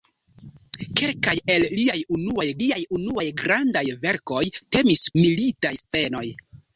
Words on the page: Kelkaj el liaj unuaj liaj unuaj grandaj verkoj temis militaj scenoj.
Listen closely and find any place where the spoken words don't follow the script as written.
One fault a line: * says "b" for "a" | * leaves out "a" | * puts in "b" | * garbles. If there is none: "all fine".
all fine